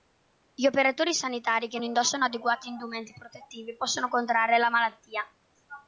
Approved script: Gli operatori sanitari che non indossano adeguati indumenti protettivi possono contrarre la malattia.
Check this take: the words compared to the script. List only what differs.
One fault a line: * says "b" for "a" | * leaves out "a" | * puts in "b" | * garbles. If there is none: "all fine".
* leaves out "non"